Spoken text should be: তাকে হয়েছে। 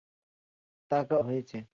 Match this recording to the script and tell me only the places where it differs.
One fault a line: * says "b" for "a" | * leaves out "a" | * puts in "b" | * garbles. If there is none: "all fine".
all fine